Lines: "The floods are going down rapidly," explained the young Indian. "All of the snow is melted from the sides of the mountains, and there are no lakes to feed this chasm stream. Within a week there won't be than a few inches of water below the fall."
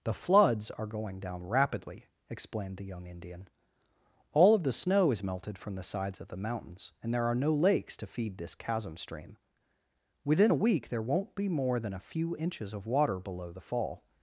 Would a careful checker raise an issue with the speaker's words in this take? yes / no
yes